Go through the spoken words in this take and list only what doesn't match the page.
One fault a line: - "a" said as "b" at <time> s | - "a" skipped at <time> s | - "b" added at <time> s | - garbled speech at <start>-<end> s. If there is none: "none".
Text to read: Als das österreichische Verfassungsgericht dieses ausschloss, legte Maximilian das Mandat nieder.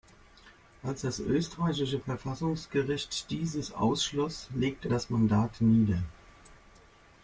- "Maximilian" skipped at 4.9 s